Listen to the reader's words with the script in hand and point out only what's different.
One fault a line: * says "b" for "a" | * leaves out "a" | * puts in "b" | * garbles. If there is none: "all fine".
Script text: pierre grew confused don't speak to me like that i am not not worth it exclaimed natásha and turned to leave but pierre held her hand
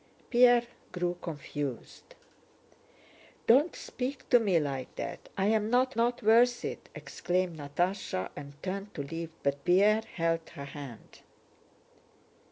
all fine